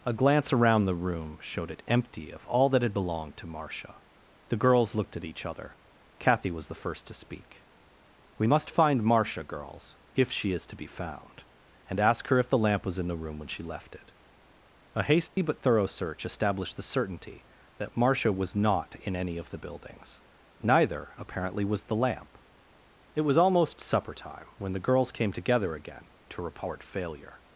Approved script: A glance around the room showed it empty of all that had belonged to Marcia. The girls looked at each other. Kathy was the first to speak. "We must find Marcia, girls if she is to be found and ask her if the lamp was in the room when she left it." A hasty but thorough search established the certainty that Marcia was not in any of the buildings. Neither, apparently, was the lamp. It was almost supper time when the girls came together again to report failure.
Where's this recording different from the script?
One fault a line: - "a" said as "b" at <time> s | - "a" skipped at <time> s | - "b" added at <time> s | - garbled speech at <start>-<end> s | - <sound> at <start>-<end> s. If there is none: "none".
- dropout at 15.3-15.4 s